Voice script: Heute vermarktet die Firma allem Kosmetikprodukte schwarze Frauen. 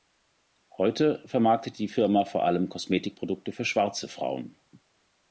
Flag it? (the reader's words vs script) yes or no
yes